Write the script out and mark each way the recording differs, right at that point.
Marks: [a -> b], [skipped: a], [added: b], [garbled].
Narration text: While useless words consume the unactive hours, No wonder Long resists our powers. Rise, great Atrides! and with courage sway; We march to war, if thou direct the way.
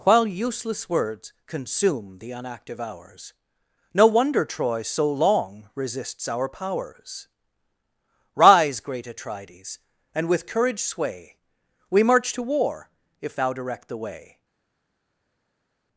While useless words consume the unactive hours, No wonder [added: Troy so] Long resists our powers. Rise, great Atrides! and with courage sway; We march to war, if thou direct the way.